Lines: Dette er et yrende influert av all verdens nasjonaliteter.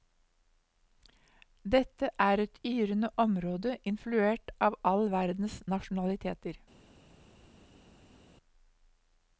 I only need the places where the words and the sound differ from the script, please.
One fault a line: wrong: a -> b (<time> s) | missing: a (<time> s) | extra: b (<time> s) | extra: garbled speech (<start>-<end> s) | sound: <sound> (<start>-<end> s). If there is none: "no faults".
extra: område (3.2 s)